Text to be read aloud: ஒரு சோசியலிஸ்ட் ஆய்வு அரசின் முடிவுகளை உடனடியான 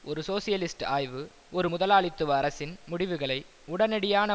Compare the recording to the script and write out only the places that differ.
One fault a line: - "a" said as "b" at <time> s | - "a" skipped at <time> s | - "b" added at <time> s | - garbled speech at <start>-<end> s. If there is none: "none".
- "ஒரு முதலாளித்துவ" added at 1.5 s